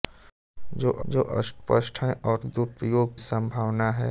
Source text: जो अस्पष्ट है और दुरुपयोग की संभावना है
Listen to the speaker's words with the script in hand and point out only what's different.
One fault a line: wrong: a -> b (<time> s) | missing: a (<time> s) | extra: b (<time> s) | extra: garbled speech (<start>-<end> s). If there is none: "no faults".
extra: जो (1.0 s)
missing: की (3.2 s)